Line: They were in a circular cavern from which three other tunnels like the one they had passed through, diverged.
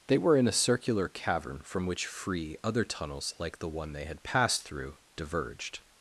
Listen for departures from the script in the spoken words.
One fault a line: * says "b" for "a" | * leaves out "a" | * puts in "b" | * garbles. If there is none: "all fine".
* says "free" for "three"